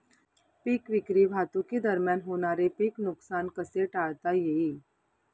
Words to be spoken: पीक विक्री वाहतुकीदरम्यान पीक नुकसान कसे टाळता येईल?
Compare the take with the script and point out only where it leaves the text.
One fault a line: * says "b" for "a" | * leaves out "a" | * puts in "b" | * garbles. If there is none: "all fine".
* puts in "होणारे"